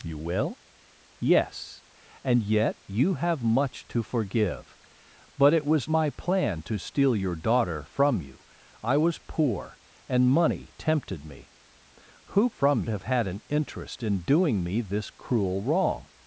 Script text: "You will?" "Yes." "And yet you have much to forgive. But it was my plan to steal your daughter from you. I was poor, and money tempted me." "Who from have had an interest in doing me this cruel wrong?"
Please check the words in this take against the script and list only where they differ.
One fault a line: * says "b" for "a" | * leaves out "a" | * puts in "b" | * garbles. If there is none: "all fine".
all fine